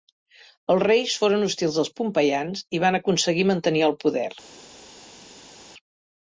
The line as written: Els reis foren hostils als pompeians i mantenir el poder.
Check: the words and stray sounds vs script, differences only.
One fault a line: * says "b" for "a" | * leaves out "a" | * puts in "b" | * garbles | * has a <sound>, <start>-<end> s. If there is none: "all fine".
* puts in "van aconseguir"